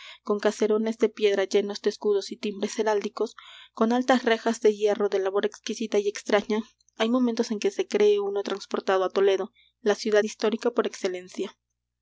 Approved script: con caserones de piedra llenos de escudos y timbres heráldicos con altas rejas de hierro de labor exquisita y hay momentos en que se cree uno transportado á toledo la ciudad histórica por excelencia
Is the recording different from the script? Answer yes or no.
yes